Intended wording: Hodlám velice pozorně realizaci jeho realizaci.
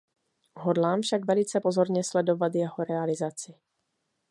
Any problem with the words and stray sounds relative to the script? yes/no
yes